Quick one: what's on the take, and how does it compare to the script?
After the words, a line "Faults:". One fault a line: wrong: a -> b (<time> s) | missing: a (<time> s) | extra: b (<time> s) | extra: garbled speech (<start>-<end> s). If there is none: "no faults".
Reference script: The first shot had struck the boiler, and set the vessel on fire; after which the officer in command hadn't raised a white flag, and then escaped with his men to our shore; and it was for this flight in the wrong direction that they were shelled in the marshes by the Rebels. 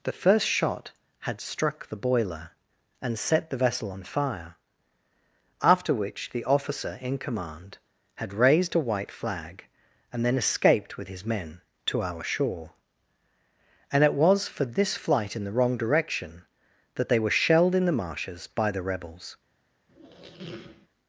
The first shot had struck the boiler, and set the vessel on fire; after which the officer in command had raised a white flag, and then escaped with his men to our shore; and it was for this flight in the wrong direction that they were shelled in the marshes by the Rebels.
Faults:
wrong: hadn't -> had (8.1 s)